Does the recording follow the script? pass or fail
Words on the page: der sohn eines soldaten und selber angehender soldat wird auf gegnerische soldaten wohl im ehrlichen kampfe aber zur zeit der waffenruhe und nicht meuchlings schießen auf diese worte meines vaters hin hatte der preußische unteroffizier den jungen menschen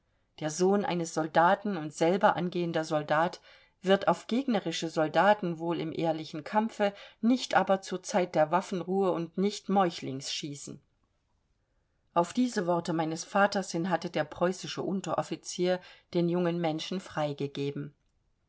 fail